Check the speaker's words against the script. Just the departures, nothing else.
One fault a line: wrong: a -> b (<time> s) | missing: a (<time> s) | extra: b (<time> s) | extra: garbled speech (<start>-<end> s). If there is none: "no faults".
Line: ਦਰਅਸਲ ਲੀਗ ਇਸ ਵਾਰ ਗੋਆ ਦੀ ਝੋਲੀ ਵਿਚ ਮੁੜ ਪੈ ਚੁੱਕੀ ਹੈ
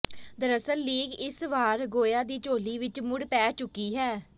no faults